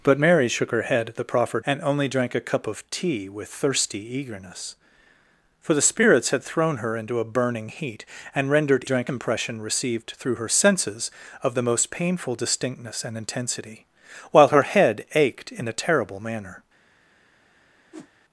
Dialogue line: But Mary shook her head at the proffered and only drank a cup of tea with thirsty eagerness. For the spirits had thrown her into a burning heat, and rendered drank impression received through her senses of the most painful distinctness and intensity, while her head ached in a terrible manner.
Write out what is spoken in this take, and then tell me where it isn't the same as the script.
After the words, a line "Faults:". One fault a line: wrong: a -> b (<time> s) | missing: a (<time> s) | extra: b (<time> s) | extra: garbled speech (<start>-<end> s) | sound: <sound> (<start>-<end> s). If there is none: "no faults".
But Mary shook her head at the proffered and only drank a cup of tea with thirsty eagerness. For the spirits had thrown her into a burning heat, and rendered drank impression received through her senses of the most painful distinctness and intensity, while her head ached in a terrible manner.
Faults:
sound: whoosh (17.9-18.1 s)